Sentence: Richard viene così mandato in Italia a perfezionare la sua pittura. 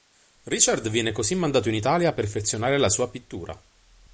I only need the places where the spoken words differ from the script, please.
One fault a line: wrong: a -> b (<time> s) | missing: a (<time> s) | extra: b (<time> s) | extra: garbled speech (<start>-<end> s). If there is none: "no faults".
no faults